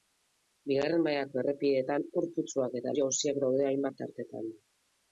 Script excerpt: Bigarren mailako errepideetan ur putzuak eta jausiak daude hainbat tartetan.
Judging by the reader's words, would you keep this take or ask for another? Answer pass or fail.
pass